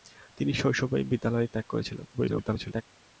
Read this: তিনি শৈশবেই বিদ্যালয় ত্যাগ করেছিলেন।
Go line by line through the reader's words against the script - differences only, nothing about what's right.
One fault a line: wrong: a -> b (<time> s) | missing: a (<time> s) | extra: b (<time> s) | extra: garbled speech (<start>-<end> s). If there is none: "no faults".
extra: garbled speech (2.1-2.8 s)